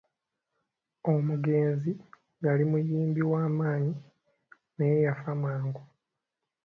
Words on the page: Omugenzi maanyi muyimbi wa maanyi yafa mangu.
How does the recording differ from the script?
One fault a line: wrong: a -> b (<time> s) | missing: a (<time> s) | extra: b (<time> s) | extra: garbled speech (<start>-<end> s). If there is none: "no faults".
wrong: maanyi -> yali (2.5 s)
extra: naye (4.8 s)